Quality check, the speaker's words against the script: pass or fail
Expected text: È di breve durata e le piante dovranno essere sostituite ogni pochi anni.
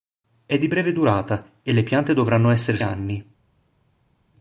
fail